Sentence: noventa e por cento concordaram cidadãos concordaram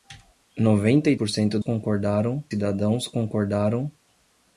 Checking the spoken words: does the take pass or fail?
pass